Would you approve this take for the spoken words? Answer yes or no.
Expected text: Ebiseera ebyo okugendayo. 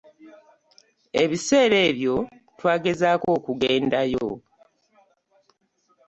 no